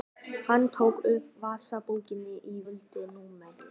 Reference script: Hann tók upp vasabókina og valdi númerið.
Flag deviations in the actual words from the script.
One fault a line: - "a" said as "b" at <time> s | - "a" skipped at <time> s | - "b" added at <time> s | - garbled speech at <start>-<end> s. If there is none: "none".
none